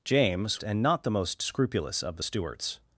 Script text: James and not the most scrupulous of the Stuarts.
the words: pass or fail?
pass